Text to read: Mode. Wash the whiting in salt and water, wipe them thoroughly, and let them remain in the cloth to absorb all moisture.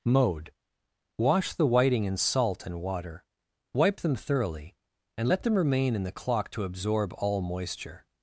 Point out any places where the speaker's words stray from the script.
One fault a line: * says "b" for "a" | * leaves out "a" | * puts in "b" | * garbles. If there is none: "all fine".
* says "clock" for "cloth"